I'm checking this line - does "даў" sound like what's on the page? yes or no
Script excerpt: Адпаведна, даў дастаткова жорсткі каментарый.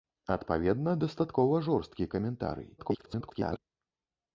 no